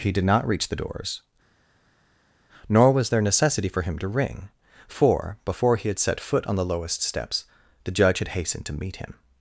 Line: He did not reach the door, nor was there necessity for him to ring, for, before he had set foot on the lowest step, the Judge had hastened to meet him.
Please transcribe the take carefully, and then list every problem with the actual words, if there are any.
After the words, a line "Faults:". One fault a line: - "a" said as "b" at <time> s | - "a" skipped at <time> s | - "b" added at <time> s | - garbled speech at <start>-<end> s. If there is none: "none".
He did not reach the doors, nor was there necessity for him to ring, for, before he had set foot on the lowest steps, the Judge had hastened to meet him.
Faults:
- "door" said as "doors" at 0.7 s
- "step" said as "steps" at 7.0 s